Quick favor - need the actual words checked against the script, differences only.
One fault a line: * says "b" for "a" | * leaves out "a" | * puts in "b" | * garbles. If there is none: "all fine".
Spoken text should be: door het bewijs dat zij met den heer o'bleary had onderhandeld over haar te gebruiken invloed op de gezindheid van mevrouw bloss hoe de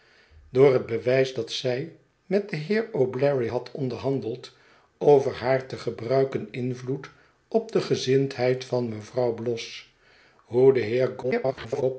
* garbles